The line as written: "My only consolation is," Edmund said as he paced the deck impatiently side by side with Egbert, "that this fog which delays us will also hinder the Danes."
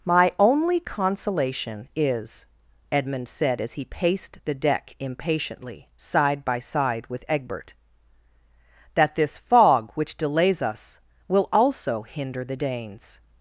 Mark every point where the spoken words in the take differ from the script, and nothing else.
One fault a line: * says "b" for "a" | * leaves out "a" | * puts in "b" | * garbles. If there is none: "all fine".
all fine